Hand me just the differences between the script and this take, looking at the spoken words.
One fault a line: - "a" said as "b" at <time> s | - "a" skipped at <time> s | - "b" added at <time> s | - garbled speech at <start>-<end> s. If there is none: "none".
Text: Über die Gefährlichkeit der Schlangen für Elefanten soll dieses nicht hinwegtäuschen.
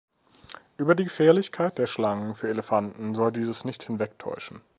none